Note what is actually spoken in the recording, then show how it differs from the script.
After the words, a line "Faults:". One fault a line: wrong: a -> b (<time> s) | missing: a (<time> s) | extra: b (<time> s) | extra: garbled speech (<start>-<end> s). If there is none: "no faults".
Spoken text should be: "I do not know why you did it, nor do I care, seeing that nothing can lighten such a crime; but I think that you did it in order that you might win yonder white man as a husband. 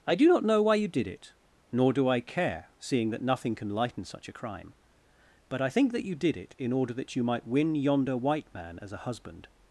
"I do not know why you did it, nor do I care, seeing that nothing can lighten such a crime; but I think that you did it in order that you might win yonder white man as a husband.
Faults:
no faults